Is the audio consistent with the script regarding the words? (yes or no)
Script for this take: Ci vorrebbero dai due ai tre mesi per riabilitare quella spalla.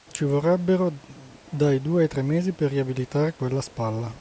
yes